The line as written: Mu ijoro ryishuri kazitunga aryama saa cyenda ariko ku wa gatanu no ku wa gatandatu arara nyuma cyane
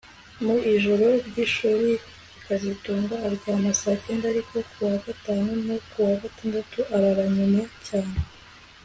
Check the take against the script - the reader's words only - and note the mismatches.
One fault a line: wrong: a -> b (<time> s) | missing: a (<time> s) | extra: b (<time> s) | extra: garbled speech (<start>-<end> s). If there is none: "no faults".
no faults